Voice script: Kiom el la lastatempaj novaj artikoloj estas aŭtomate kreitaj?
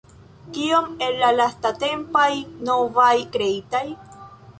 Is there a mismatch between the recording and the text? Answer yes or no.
yes